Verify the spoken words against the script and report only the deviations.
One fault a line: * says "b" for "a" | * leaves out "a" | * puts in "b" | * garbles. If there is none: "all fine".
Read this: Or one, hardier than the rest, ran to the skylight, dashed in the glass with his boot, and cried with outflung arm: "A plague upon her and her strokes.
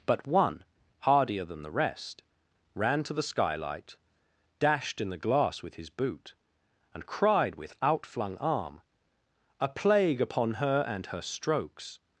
* says "But" for "Or"